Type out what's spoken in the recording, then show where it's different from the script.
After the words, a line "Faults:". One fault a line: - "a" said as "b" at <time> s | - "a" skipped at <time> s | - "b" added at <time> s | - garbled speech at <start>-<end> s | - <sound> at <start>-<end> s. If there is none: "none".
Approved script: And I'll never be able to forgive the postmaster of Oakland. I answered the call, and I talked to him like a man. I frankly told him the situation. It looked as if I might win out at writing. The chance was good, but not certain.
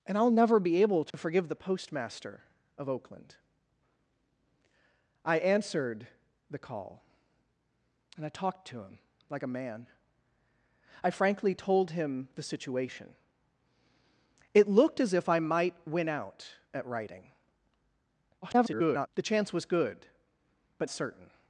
And I'll never be able to forgive the postmaster of Oakland. I answered the call, and I talked to him like a man. I frankly told him the situation. It looked as if I might win out at writing. [garbled] The chance was good, but certain.
Faults:
- dropout at 1.1-1.1 s
- garbled speech at 18.4-19.1 s
- "not" skipped at 20.9 s